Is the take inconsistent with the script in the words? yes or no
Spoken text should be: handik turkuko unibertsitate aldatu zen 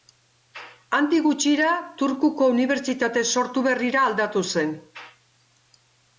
yes